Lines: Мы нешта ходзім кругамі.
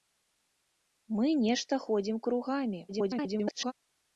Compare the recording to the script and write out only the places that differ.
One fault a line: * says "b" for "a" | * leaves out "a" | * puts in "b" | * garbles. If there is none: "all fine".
* garbles